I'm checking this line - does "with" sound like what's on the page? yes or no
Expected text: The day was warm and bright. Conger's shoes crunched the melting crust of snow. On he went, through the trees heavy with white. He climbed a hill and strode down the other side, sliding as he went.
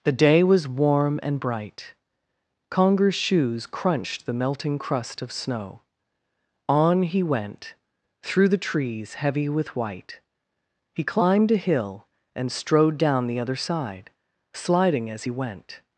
yes